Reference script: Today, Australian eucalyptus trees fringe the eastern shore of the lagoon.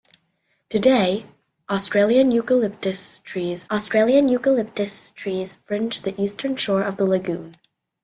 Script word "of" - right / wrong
right